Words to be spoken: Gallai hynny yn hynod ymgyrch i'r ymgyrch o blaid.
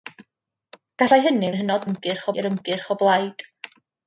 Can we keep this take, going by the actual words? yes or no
yes